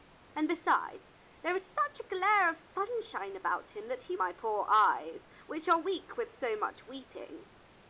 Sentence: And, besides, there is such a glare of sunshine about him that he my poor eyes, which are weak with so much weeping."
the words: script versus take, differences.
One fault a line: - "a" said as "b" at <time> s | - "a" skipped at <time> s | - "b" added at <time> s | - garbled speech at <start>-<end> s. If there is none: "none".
none